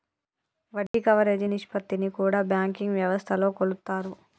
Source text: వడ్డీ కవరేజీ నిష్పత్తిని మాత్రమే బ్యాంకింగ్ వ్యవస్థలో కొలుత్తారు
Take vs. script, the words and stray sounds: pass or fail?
fail